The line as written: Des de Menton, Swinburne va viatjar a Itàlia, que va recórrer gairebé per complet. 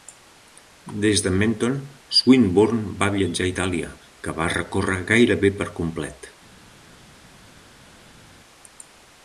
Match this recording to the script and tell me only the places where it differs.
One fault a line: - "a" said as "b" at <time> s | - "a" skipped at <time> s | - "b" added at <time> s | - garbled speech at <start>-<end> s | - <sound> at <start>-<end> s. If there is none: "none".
none